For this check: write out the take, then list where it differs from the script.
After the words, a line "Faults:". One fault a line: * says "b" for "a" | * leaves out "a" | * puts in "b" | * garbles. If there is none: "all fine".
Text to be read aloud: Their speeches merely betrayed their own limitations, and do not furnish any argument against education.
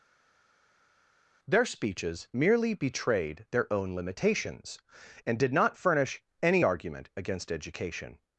Their speeches merely betrayed their own limitations, and did not furnish any argument against education.
Faults:
* says "did" for "do"